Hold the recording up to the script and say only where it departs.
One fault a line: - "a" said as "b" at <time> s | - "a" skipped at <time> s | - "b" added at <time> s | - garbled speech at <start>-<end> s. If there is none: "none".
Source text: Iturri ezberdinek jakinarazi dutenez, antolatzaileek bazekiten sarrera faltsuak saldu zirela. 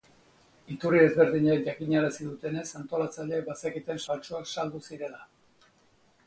- "sarrera" skipped at 4.0 s